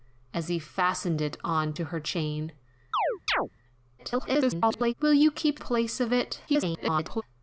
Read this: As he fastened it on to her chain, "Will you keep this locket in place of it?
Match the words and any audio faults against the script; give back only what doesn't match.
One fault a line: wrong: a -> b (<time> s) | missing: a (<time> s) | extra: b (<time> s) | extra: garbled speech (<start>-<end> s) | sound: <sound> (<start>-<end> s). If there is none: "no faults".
sound: chirp (2.9-3.5 s)
extra: garbled speech (4.0-4.9 s)
missing: this locket in (5.6 s)
extra: garbled speech (6.5-7.2 s)